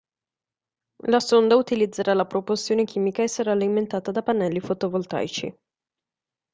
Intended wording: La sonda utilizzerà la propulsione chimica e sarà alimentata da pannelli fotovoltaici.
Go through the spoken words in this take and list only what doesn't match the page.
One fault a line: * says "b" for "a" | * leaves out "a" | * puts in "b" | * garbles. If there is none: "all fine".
all fine